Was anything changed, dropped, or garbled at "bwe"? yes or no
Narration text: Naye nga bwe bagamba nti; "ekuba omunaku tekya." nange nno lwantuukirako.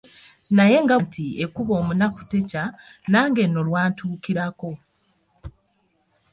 yes